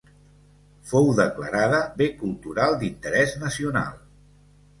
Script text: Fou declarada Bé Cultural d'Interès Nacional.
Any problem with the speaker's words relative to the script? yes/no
no